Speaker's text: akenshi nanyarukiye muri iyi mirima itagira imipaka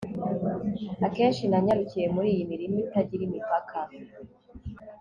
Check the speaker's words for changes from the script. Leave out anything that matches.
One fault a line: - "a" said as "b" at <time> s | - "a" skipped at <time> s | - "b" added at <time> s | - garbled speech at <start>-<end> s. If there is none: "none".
none